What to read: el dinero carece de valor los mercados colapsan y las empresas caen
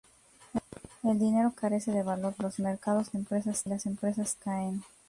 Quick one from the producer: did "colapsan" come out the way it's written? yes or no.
no